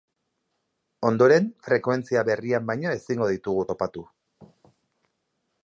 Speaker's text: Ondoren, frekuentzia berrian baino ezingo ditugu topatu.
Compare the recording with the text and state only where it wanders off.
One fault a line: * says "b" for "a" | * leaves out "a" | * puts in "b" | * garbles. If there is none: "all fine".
all fine